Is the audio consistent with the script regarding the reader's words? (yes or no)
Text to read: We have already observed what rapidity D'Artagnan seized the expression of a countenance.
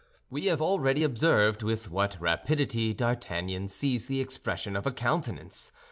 no